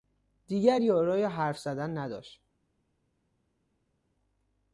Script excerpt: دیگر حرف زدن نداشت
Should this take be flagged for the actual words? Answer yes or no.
yes